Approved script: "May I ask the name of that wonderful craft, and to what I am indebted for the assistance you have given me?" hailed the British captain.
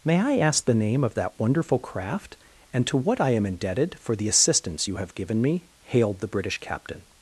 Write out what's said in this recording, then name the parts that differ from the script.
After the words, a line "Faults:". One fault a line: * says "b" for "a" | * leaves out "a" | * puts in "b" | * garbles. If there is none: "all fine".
"May I ask the name of that wonderful craft, and to what I am indebted for the assistance you have given me?" hailed the British captain.
Faults:
all fine